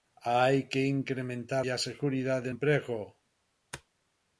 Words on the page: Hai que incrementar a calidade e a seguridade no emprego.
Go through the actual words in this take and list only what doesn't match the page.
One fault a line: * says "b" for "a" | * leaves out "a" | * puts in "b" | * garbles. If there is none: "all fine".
* leaves out "a calidade"
* leaves out "no"